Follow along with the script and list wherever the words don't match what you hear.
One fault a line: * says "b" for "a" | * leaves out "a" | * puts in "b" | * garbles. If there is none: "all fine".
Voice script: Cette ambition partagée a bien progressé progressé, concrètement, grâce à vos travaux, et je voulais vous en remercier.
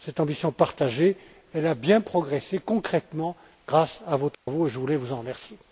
* leaves out "progressé"